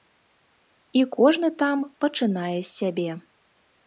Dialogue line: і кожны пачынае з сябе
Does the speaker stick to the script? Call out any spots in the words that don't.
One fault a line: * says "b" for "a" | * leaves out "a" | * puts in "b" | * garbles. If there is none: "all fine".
* puts in "там"